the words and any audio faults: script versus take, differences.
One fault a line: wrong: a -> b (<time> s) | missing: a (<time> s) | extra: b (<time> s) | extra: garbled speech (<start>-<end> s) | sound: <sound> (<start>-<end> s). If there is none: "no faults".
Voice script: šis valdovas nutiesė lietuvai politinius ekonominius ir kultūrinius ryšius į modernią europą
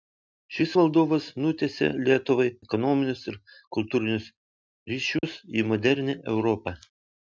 missing: politinius (2.5 s)
sound: dropout (5.2-5.2 s)